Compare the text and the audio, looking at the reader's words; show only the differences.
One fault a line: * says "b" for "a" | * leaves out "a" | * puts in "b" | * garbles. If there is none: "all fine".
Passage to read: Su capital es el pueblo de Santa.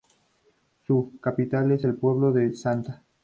all fine